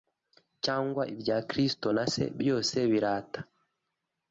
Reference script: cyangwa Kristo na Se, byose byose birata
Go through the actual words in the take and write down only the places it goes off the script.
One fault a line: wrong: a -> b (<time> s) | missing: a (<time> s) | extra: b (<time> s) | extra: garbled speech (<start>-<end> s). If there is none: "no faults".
extra: ibya (1.1 s)
missing: byose (2.8 s)